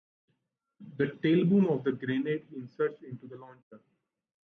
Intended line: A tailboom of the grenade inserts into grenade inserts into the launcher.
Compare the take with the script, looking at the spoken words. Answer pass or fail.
fail